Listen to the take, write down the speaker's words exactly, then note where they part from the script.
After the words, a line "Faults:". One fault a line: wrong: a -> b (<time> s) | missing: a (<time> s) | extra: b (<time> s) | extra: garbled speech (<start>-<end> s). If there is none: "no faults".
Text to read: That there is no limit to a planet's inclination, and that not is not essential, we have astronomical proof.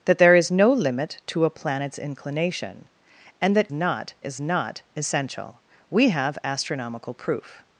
That there is no limit to a planet's inclination, and that not is not essential, we have astronomical proof.
Faults:
no faults